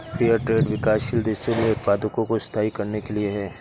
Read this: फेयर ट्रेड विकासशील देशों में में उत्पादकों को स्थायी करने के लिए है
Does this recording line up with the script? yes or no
no